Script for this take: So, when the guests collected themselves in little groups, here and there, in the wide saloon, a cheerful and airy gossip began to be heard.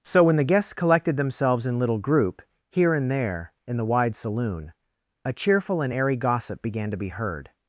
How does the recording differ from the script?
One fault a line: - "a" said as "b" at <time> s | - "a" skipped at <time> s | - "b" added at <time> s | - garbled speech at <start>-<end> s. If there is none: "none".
- "groups" said as "group" at 2.0 s